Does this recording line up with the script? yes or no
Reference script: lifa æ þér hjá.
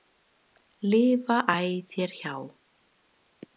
yes